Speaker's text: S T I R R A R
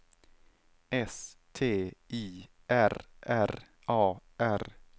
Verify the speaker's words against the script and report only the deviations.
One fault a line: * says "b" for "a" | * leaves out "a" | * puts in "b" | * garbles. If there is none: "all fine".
all fine